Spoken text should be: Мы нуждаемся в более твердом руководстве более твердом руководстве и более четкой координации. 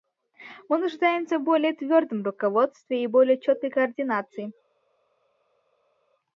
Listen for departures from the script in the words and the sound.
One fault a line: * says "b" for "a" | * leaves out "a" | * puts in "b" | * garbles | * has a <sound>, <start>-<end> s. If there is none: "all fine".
* leaves out "более твердом руководстве"